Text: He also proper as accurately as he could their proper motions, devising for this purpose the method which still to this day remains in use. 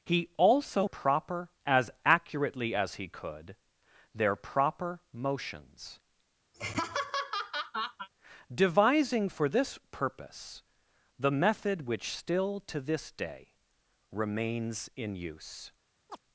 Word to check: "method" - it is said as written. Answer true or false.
true